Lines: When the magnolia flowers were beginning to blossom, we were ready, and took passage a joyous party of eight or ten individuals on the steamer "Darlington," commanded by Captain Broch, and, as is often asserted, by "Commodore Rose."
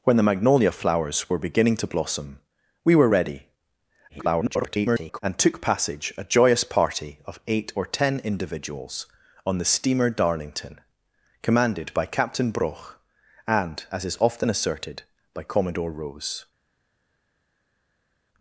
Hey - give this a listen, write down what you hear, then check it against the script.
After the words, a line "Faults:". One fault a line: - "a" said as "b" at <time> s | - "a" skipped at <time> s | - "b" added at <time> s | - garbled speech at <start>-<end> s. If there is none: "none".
When the magnolia flowers were beginning to blossom, we were ready, [garbled] and took passage a joyous party of eight or ten individuals on the steamer "Darlington," commanded by Captain Broch, and, as is often asserted, by "Commodore Rose."
Faults:
- garbled speech at 4.1-5.2 s